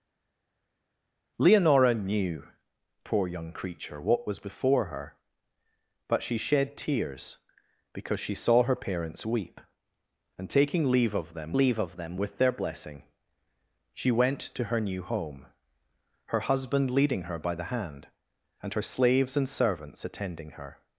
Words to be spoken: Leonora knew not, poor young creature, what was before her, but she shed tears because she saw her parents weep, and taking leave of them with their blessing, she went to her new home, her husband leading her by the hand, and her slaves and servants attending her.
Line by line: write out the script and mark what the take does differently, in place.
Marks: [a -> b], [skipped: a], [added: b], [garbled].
Leonora knew [skipped: not,] poor young creature, what was before her, but she shed tears because she saw her parents weep, and taking leave of them [added: leave of them] with their blessing, she went to her new home, her husband leading her by the hand, and her slaves and servants attending her.